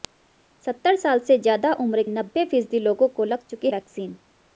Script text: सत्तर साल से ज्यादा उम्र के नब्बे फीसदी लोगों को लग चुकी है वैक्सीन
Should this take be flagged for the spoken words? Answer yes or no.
yes